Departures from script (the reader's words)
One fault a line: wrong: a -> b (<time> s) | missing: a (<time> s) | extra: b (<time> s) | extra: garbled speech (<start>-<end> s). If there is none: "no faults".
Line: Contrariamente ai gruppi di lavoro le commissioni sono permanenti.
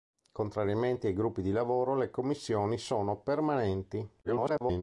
extra: garbled speech (4.2-4.8 s)